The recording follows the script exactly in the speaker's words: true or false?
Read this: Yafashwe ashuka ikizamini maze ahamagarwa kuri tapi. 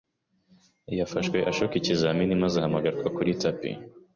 true